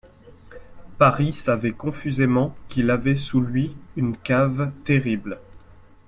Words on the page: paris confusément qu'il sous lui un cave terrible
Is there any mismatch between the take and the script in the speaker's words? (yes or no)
yes